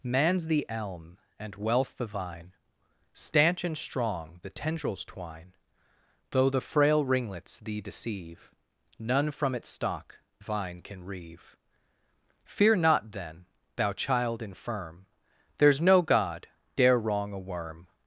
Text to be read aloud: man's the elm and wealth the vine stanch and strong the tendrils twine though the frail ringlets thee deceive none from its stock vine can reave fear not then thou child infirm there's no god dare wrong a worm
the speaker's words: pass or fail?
pass